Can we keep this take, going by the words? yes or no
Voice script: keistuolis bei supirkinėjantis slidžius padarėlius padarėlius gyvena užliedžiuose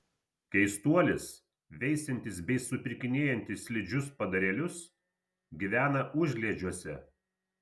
no